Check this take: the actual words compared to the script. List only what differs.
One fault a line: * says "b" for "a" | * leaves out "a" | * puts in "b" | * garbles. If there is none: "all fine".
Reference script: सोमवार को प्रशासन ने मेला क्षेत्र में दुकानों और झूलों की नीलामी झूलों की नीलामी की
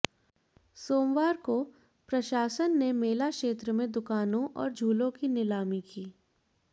* leaves out "झूलों की नीलामी"